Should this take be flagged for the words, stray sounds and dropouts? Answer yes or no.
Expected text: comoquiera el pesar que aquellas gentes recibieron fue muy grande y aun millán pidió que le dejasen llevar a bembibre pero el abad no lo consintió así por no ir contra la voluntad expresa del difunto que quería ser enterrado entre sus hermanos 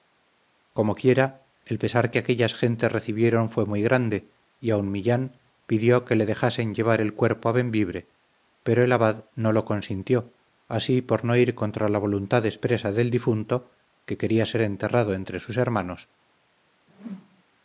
yes